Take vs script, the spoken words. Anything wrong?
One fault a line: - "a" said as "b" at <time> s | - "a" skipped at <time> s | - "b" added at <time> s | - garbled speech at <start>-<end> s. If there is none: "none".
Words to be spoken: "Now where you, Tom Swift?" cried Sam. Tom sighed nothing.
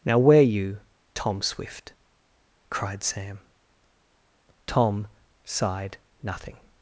none